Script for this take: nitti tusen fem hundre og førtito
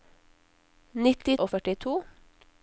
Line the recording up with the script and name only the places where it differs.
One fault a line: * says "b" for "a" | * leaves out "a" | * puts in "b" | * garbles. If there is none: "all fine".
* leaves out "tusen fem hundre"